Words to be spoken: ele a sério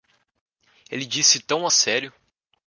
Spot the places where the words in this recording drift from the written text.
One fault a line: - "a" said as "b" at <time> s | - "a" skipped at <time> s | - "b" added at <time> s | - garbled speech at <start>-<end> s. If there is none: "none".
- "disse tão" added at 1.1 s